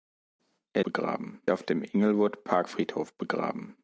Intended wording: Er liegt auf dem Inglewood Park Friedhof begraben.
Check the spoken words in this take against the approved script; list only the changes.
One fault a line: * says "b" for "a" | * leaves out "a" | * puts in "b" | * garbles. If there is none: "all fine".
* says "begraben" for "liegt"